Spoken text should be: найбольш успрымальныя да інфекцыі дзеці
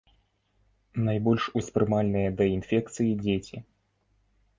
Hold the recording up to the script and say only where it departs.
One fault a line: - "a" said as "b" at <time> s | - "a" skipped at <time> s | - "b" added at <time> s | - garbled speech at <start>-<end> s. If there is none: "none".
none